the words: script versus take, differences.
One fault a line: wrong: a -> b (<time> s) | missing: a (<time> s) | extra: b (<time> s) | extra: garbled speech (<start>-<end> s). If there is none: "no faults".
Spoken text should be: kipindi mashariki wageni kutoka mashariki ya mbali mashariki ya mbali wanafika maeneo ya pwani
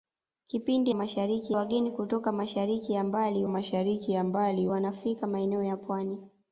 no faults